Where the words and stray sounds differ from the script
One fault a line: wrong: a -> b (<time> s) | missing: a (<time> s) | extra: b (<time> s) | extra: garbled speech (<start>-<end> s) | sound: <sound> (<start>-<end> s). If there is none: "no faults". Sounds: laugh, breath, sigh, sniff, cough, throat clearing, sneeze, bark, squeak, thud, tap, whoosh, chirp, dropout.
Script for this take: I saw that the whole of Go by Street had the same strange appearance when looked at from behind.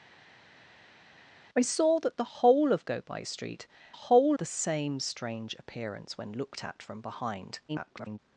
wrong: had -> whole (3.9 s)
extra: garbled speech (7.7-8.2 s)